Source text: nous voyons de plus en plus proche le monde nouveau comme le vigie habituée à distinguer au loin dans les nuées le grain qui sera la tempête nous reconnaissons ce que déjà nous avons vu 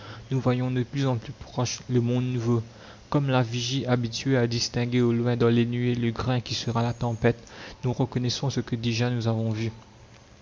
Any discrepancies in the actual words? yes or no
yes